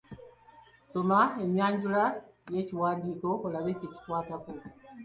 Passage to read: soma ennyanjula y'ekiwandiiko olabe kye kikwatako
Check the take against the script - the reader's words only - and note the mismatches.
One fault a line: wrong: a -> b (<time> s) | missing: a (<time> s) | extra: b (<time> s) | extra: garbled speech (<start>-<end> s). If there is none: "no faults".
no faults